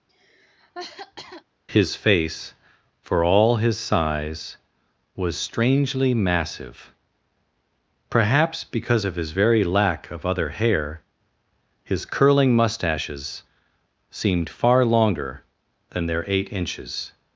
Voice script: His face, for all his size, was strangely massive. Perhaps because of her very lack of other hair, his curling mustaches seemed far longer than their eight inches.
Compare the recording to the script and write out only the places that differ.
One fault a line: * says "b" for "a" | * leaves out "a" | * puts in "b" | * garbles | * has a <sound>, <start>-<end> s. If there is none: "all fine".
* has a cough, 0.1-1.4 s
* says "his" for "her"